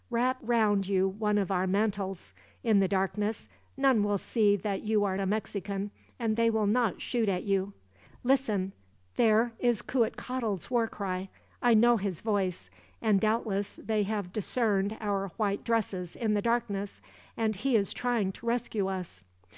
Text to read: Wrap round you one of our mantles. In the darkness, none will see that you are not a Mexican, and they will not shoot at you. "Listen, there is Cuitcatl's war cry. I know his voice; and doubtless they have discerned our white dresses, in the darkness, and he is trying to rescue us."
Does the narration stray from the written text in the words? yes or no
yes